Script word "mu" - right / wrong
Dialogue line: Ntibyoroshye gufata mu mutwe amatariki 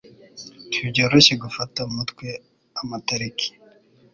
wrong